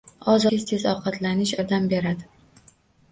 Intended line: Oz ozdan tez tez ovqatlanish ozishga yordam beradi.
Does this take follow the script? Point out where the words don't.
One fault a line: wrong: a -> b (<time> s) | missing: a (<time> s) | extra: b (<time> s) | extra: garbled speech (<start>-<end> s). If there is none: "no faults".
missing: ozdan (0.5 s)
missing: ozishga (1.5 s)